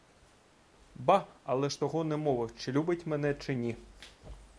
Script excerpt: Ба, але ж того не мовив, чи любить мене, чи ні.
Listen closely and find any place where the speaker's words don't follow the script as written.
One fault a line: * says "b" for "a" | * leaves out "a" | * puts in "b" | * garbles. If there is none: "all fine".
all fine